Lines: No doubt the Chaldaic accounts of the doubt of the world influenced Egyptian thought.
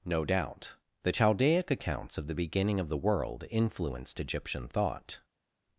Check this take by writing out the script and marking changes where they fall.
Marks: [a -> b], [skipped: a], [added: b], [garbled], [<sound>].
No doubt the Chaldaic accounts of the [doubt -> beginning] of the world influenced Egyptian thought.